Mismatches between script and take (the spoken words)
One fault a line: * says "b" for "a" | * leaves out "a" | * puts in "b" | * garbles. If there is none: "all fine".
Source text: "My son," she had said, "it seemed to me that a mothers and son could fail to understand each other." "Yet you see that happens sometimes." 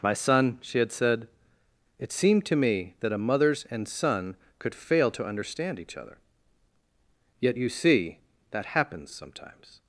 all fine